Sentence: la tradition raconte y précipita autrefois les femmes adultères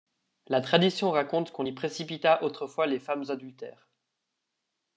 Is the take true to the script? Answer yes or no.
no